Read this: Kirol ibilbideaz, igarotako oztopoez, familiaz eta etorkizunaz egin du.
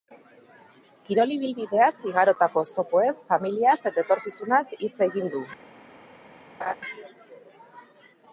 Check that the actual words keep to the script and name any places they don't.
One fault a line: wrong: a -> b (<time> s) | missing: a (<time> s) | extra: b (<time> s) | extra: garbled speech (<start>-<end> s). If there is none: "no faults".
extra: hitz (4.8 s)